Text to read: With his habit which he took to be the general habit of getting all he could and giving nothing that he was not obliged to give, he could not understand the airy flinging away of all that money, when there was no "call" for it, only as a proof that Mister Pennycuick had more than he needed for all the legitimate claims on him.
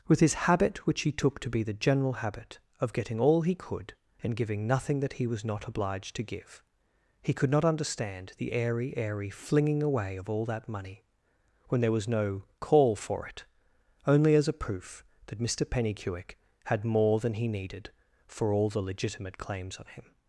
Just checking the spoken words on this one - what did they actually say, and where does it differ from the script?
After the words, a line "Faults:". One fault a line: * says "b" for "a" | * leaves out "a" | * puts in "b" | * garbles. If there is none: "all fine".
With his habit which he took to be the general habit of getting all he could and giving nothing that he was not obliged to give, he could not understand the airy airy flinging away of all that money, when there was no "call" for it, only as a proof that Mister Pennycuick had more than he needed for all the legitimate claims on him.
Faults:
* puts in "airy"